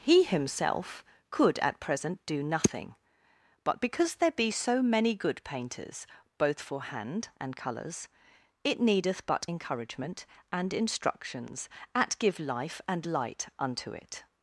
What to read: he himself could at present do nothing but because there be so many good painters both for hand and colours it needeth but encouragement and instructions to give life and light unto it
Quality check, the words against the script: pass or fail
fail